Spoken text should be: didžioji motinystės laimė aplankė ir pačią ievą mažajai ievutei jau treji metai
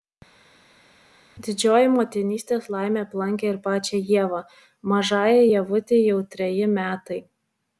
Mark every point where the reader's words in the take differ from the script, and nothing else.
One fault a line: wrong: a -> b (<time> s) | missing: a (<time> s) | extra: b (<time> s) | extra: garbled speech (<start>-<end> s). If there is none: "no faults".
no faults